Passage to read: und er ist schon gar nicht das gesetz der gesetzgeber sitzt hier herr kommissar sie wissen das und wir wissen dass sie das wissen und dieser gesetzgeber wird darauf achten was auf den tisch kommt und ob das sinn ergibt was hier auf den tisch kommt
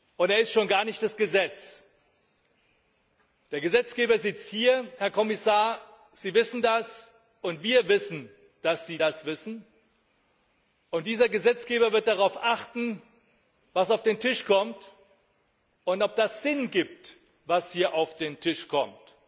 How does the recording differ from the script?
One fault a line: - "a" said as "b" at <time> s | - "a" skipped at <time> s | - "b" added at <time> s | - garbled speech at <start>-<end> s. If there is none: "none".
none